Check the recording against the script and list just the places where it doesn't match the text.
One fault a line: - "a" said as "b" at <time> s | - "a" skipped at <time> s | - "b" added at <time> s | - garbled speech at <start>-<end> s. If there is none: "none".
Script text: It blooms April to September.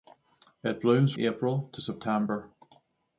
none